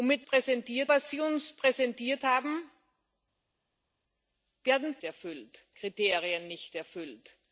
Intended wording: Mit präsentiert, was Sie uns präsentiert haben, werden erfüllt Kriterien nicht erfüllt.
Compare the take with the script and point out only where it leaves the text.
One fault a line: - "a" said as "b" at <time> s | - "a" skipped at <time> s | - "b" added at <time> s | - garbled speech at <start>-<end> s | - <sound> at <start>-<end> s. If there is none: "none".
none